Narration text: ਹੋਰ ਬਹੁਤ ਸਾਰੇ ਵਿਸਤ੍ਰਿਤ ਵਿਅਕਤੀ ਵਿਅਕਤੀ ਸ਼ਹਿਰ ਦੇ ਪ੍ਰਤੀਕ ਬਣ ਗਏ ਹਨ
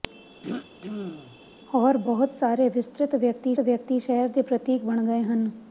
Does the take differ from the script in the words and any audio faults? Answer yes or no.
yes